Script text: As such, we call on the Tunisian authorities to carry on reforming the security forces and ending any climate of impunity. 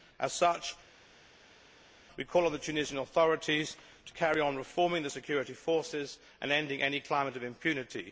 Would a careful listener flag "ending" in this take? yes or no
no